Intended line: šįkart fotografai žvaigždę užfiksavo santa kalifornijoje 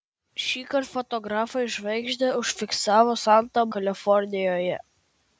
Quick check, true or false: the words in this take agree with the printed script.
true